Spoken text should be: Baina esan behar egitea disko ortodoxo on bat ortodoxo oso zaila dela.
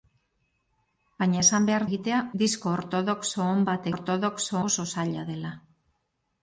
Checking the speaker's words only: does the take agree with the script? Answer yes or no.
yes